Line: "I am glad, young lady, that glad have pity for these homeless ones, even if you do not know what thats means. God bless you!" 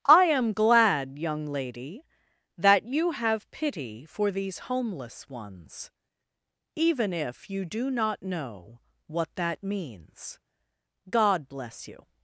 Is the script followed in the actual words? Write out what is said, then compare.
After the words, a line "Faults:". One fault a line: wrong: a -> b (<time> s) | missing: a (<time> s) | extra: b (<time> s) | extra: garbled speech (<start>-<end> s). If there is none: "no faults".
"I am glad, young lady, that you have pity for these homeless ones, even if you do not know what that means. God bless you!"
Faults:
wrong: glad -> you (2.9 s)
wrong: thats -> that (9.4 s)